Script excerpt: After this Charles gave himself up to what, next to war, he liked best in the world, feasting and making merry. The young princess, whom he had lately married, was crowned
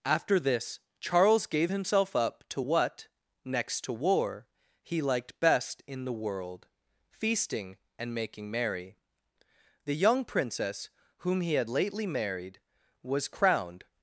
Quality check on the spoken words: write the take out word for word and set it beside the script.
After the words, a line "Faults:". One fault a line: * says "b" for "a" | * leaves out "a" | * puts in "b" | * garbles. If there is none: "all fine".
After this Charles gave himself up to what, next to war, he liked best in the world, feasting and making merry. The young princess, whom he had lately married, was crowned
Faults:
all fine